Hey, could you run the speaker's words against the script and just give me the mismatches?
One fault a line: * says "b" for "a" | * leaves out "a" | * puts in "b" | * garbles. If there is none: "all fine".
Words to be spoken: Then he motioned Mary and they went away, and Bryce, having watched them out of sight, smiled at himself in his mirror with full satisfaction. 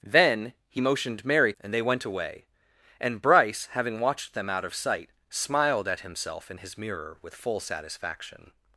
all fine